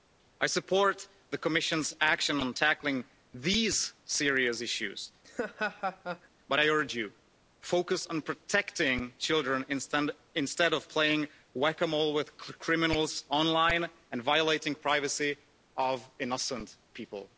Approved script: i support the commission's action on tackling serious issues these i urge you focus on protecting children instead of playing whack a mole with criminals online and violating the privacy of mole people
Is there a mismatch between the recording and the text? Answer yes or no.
yes